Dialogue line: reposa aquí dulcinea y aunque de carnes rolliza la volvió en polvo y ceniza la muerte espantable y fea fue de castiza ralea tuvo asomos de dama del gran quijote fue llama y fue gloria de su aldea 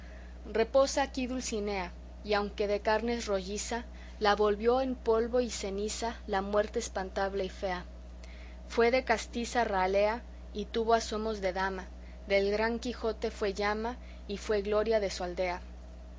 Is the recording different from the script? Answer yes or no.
yes